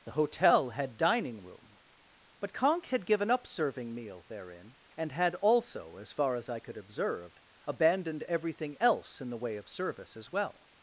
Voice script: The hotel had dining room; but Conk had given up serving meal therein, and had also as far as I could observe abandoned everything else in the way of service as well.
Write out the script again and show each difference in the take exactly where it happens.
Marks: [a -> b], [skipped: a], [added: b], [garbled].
The hotel had dining room; but Conk had given up serving meal therein, and had also as far as I could observe abandoned everything else in the way of service as well.